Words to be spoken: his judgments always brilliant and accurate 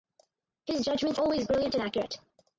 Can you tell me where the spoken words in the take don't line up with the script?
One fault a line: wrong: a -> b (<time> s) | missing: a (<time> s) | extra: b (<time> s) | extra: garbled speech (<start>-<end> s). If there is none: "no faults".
no faults